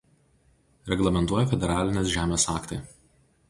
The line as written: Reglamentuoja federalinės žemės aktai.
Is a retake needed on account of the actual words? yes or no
no